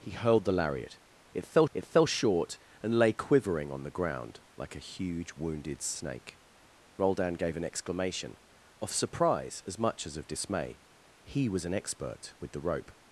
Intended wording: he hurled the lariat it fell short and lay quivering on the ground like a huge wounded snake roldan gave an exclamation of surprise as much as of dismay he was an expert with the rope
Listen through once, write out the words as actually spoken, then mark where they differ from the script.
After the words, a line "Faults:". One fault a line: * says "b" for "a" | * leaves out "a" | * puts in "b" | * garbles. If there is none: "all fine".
he hurled the lariat it fell it fell short and lay quivering on the ground like a huge wounded snake roldan gave an exclamation of surprise as much as of dismay he was an expert with the rope
Faults:
* puts in "it fell"